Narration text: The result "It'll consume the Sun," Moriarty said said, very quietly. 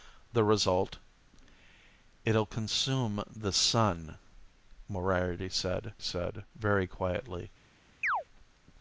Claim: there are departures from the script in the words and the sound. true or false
true